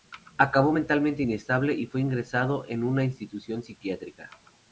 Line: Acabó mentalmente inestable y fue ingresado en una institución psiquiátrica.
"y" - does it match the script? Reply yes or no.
yes